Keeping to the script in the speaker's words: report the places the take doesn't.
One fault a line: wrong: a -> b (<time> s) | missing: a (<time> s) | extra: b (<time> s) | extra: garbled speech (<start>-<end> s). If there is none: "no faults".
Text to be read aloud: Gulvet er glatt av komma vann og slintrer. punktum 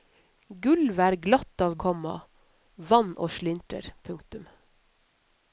no faults